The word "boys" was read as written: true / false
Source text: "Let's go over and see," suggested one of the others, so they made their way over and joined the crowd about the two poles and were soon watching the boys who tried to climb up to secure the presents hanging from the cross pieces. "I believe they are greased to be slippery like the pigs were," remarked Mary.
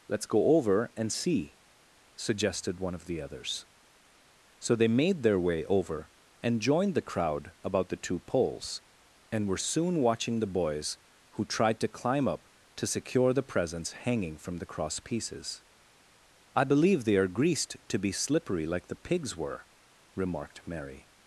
true